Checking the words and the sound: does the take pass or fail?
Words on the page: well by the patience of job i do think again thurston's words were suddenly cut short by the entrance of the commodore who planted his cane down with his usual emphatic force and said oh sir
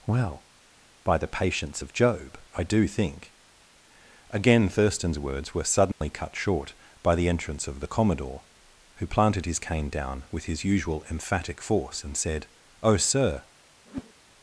fail